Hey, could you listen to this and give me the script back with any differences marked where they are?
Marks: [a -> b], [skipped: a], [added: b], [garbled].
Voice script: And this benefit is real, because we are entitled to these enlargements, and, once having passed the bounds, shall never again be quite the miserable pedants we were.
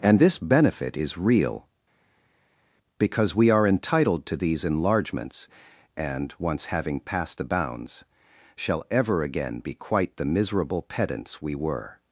And this benefit is real, because we are entitled to these enlargements, and, once having passed the bounds, shall [never -> ever] again be quite the miserable pedants we were.